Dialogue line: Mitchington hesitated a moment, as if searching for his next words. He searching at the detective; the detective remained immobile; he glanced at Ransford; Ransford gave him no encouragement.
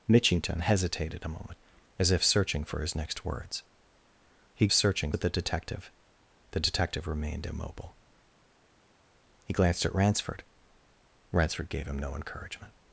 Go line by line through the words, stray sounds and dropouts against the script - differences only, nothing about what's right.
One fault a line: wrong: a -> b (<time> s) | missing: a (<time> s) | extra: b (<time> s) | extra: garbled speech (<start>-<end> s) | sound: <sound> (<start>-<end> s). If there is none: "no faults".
no faults